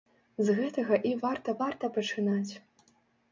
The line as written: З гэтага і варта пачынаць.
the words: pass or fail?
fail